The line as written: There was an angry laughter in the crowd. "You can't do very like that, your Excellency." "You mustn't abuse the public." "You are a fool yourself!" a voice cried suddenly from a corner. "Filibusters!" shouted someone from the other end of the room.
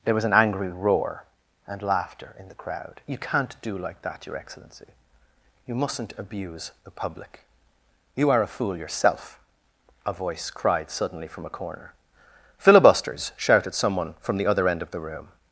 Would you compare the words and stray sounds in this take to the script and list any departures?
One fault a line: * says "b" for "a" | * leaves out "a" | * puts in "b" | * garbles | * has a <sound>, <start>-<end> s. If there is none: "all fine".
* puts in "roar and"
* leaves out "very"